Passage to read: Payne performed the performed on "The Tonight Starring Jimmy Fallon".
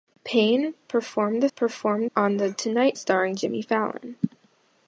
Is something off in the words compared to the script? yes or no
no